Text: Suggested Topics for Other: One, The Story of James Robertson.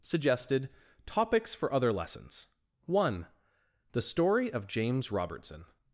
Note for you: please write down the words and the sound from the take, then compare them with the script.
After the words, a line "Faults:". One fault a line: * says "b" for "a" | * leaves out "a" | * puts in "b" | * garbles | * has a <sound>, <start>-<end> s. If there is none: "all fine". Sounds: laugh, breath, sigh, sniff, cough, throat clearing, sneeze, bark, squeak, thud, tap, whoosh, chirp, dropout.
Suggested Topics for Other Lessons: one, The Story of James Robertson.
Faults:
* puts in "Lessons"